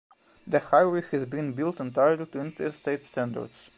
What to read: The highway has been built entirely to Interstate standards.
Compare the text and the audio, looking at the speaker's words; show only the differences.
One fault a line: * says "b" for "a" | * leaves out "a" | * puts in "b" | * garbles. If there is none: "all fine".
all fine